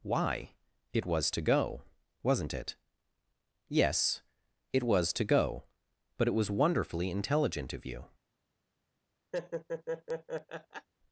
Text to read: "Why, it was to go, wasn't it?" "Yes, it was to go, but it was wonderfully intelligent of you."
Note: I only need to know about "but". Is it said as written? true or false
true